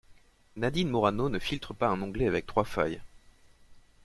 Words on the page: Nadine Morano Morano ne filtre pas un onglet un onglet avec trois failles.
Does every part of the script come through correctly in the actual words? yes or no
no